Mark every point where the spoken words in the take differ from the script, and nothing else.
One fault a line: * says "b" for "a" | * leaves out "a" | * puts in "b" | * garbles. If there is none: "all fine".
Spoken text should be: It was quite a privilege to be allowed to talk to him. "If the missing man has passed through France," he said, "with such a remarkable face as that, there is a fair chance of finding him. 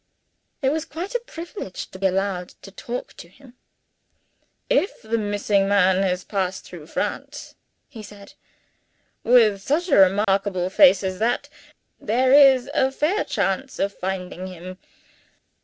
* leaves out "be"